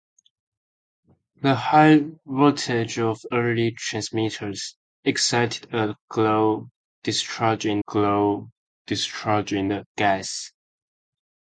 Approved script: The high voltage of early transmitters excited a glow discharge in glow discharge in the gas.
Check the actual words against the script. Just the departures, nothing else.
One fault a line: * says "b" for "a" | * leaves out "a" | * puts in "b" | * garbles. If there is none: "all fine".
all fine